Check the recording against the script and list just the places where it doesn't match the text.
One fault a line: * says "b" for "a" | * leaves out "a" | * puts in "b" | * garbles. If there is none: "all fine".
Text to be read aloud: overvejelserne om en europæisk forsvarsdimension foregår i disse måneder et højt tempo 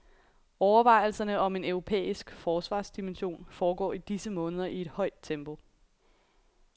* puts in "i"